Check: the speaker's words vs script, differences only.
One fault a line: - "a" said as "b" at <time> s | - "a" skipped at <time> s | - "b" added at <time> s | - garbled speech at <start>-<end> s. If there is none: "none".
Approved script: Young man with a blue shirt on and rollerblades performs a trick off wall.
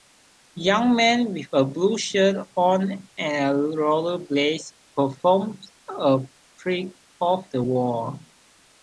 - "the" added at 7.5 s